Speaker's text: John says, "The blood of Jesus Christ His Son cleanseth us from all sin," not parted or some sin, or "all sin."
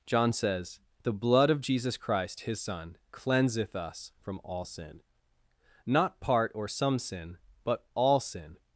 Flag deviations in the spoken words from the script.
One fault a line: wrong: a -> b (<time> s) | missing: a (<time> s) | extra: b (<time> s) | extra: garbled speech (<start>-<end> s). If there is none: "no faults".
wrong: parted -> part (6.2 s)
wrong: or -> but (7.6 s)